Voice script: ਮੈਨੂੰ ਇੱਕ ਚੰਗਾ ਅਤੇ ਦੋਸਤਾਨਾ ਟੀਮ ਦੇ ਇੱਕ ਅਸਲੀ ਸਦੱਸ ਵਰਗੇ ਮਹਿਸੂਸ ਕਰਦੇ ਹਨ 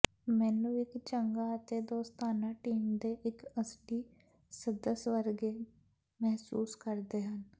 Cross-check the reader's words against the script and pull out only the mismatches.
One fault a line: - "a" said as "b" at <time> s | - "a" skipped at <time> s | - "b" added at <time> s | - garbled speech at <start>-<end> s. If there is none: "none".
none